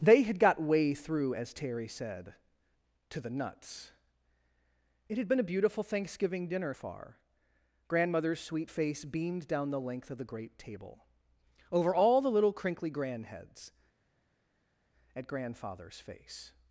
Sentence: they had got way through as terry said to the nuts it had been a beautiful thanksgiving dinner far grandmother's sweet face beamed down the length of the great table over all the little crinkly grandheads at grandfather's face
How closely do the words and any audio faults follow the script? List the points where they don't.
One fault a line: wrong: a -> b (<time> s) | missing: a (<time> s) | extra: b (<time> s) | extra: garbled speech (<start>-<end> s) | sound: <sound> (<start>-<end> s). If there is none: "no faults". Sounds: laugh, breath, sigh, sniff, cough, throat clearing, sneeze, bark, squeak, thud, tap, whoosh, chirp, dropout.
no faults